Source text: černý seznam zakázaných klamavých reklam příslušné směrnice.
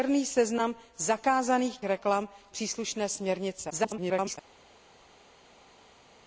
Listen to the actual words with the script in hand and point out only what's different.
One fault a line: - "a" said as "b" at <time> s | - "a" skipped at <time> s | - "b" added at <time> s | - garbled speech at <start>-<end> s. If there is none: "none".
- "klamavých" skipped at 1.8 s
- garbled speech at 3.7-4.4 s